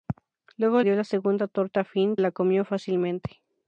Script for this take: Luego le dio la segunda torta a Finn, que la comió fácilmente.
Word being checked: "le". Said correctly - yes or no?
no